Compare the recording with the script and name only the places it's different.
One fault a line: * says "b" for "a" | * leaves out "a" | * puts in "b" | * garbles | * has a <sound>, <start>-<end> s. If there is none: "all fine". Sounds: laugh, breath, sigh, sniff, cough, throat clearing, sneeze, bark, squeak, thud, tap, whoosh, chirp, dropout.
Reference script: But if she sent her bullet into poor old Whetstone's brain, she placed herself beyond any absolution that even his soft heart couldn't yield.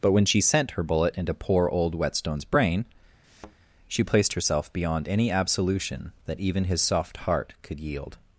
* says "when" for "if"
* has a thud, 3.2-3.6 s
* says "could" for "couldn't"